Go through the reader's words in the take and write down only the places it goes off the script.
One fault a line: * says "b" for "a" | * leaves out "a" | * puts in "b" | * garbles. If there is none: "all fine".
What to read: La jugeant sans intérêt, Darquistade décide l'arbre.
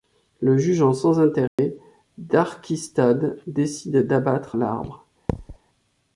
* says "Le" for "La"
* puts in "d'abattre"